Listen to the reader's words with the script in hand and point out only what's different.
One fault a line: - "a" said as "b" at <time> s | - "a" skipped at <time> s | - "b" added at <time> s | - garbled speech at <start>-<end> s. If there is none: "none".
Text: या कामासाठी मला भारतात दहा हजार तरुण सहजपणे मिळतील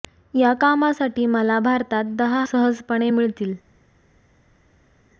- "हजार तरुण" skipped at 2.4 s